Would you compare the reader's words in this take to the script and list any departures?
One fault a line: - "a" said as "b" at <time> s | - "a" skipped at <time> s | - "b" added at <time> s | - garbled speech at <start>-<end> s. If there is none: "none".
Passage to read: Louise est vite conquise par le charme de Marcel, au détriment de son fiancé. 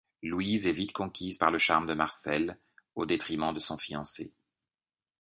none